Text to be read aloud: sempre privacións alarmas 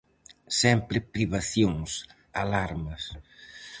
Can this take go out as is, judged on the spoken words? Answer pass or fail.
pass